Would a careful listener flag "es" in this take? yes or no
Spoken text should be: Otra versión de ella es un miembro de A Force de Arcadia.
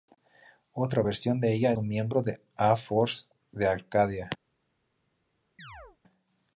yes